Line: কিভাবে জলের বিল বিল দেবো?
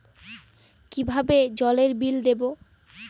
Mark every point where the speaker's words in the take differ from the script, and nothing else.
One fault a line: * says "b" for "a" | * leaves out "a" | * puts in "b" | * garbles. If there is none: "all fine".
* leaves out "বিল"